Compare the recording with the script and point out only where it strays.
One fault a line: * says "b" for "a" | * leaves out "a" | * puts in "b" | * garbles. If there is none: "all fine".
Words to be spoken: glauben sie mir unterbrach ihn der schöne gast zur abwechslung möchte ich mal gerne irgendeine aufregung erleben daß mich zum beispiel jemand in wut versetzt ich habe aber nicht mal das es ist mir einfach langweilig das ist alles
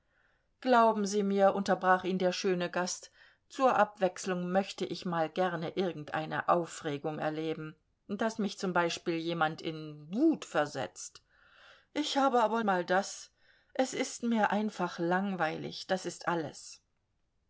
* leaves out "nicht"